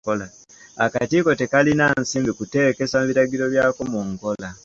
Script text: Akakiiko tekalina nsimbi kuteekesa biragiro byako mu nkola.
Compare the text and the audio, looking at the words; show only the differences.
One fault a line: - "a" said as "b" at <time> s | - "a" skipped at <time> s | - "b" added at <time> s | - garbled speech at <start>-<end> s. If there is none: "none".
none